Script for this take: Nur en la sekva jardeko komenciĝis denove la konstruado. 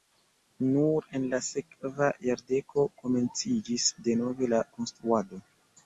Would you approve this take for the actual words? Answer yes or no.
yes